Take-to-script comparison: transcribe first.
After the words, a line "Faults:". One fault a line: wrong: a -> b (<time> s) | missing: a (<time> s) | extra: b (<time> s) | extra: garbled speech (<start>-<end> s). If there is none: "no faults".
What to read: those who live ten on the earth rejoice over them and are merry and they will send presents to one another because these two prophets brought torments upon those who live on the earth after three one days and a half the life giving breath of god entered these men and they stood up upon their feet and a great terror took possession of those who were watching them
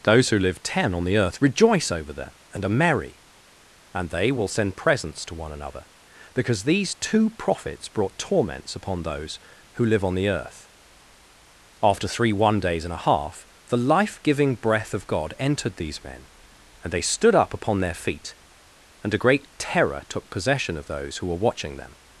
those who live ten on the earth rejoice over them and are merry and they will send presents to one another because these two prophets brought torments upon those who live on the earth after three one days and a half the life giving breath of god entered these men and they stood up upon their feet and a great terror took possession of those who were watching them
Faults:
no faults